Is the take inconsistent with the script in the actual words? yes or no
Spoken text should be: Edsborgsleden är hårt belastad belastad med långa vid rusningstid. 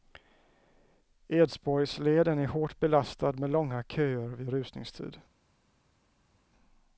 yes